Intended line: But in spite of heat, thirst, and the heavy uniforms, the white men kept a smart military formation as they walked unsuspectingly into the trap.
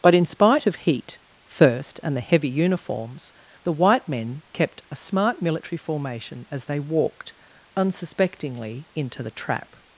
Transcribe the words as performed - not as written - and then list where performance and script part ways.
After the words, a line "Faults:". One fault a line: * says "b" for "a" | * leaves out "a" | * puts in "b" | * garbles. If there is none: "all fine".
But in spite of heat, thirst, and the heavy uniforms, the white men kept a smart military formation as they walked unsuspectingly into the trap.
Faults:
all fine